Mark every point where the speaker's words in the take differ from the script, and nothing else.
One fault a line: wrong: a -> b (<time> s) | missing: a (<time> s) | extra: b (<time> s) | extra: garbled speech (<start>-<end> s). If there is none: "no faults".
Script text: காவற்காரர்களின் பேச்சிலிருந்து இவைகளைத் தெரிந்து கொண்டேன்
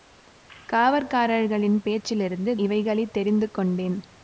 no faults